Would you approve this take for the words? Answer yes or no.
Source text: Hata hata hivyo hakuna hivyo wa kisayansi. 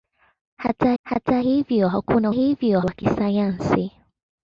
yes